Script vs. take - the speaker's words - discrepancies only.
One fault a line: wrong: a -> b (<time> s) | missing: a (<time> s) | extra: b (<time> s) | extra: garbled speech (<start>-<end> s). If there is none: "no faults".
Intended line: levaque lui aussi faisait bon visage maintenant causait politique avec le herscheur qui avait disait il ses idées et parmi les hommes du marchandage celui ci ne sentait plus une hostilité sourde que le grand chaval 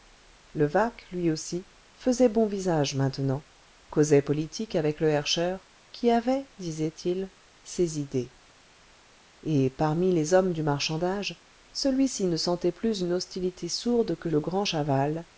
no faults